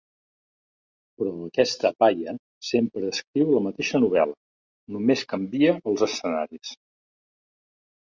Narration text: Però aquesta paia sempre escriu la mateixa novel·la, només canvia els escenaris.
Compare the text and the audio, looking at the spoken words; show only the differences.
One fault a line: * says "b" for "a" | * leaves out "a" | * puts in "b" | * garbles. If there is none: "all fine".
all fine